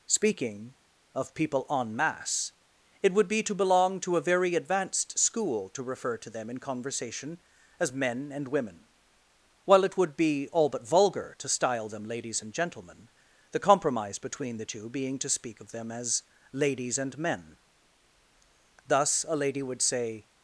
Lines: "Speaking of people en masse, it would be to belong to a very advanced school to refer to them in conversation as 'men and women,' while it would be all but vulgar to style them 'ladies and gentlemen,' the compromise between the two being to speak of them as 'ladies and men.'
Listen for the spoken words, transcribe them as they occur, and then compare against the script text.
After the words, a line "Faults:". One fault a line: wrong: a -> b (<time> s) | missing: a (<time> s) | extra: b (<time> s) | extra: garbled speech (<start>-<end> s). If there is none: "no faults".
"Speaking of people en masse, it would be to belong to a very advanced school to refer to them in conversation as 'men and women,' while it would be all but vulgar to style them 'ladies and gentlemen,' the compromise between the two being to speak of them as 'ladies and men.' Thus a lady would say
Faults:
extra: Thus a lady would say (18.9 s)